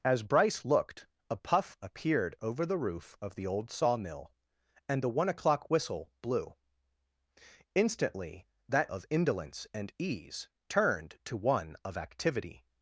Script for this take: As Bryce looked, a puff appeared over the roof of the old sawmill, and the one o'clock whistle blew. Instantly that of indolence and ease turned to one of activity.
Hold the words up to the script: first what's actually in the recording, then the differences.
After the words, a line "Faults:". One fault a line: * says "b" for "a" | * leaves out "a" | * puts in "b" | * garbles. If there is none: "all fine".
As Bryce looked, a puff appeared over the roof of the old sawmill, and the one o'clock whistle blew. Instantly that of indolence and ease turned to one of activity.
Faults:
all fine